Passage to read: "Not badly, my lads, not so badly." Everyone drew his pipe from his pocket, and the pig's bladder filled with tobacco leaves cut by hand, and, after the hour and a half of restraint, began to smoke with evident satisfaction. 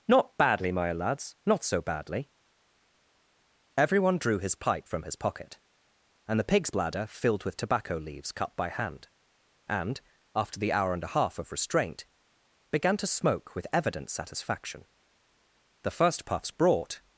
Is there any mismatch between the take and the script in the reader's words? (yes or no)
yes